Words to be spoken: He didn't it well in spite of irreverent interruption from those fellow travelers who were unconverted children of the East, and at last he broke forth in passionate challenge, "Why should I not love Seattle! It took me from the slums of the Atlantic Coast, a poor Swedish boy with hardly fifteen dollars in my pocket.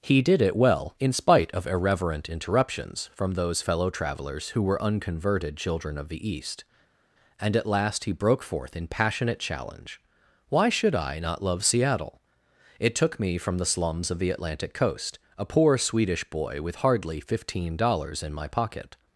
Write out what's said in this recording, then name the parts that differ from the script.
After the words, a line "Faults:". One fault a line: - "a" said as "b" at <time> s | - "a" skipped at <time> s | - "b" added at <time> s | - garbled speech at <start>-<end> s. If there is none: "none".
He did it well in spite of irreverent interruptions from those fellow travelers who were unconverted children of the East, and at last he broke forth in passionate challenge, "Why should I not love Seattle! It took me from the slums of the Atlantic Coast, a poor Swedish boy with hardly fifteen dollars in my pocket.
Faults:
- "didn't" said as "did" at 0.2 s
- "interruption" said as "interruptions" at 2.3 s